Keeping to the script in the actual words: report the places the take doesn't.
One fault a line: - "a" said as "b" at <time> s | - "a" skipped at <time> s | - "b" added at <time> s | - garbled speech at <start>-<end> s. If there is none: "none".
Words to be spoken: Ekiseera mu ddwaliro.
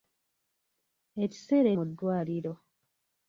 none